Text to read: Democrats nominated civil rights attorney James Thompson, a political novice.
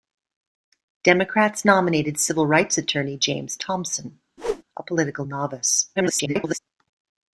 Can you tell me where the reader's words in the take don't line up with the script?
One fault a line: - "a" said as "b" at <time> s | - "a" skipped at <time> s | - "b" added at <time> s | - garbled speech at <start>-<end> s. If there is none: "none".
- garbled speech at 5.9-6.6 s